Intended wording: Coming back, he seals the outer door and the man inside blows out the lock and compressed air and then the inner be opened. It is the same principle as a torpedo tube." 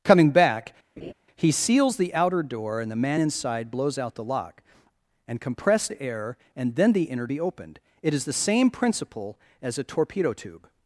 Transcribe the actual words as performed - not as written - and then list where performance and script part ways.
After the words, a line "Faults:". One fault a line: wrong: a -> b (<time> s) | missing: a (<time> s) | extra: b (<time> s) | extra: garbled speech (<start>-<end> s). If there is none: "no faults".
Coming back, he seals the outer door and the man inside blows out the lock and compressed air and then the inner be opened. It is the same principle as a torpedo tube."
Faults:
no faults